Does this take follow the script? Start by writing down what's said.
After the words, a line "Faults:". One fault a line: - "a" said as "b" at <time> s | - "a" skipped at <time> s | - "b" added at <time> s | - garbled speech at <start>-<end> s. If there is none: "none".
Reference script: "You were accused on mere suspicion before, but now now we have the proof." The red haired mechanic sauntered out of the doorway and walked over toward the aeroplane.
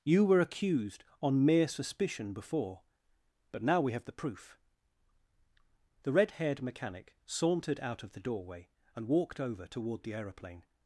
"You were accused on mere suspicion before, but now we have the proof." The red haired mechanic sauntered out of the doorway and walked over toward the aeroplane.
Faults:
- "now" skipped at 3.8 s